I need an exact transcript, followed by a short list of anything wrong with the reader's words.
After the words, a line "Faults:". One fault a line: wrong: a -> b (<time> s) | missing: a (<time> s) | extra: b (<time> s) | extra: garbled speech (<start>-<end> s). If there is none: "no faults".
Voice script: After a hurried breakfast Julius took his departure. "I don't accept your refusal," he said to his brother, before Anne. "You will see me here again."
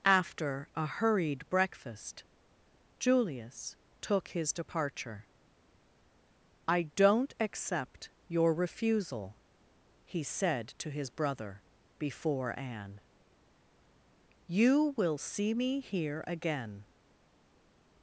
After a hurried breakfast Julius took his departure. "I don't accept your refusal," he said to his brother, before Anne. "You will see me here again."
Faults:
no faults